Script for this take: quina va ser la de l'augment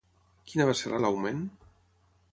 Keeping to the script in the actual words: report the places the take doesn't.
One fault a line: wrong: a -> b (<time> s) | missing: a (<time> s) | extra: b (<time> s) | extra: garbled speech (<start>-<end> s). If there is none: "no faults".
no faults